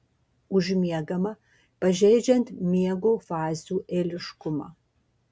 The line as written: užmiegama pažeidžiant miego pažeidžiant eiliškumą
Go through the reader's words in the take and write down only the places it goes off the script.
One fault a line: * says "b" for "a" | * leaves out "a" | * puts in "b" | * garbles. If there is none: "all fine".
* says "fazių" for "pažeidžiant"